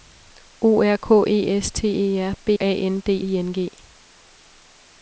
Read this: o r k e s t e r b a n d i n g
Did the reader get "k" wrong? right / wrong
right